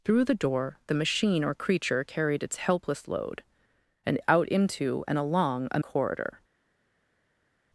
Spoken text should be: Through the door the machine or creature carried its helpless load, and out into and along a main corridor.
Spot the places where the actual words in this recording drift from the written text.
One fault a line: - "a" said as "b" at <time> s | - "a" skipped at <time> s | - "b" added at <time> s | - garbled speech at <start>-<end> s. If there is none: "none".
- "main" skipped at 5.8 s